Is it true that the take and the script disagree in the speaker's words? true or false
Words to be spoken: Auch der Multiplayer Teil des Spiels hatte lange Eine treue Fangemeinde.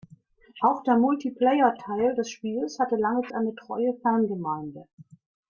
false